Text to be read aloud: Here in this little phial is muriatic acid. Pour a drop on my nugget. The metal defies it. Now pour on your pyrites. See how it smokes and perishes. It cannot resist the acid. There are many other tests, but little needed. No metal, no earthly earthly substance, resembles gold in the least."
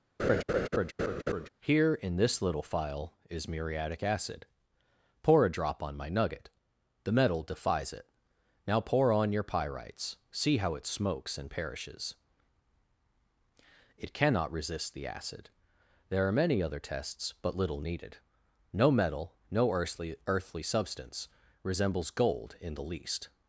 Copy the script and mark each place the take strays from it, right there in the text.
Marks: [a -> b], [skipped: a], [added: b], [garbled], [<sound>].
[laugh] Here in this little phial is muriatic acid. Pour a drop on my nugget. The metal defies it. Now pour on your pyrites. See how it smokes and perishes. It cannot resist the acid. There are many other tests, but little needed. No metal, no earthly earthly substance, resembles gold in the least."